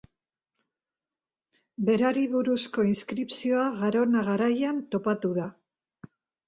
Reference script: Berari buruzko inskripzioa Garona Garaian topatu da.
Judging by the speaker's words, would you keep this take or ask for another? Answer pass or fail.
pass